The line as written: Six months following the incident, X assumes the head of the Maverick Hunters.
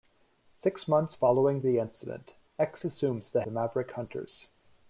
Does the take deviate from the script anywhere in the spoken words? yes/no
yes